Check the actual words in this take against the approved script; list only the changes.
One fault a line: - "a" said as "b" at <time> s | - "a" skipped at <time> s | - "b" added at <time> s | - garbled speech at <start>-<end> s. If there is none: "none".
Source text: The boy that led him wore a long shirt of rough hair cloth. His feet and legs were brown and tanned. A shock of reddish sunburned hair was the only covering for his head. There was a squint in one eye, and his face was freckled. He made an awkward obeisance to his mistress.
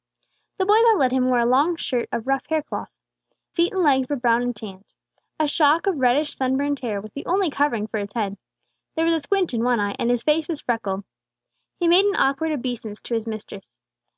- "His" skipped at 2.9 s